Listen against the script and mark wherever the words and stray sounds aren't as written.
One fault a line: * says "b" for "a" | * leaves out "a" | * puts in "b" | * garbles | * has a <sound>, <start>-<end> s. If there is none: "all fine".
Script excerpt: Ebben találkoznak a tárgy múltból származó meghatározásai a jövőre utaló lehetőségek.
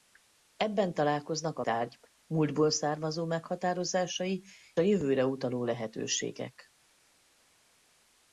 all fine